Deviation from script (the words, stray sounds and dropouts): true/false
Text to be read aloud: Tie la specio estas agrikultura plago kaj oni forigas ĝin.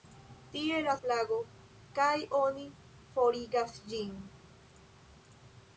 true